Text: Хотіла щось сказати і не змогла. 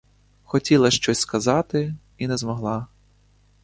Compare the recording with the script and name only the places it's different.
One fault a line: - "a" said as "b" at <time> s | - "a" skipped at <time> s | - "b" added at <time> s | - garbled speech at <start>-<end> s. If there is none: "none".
none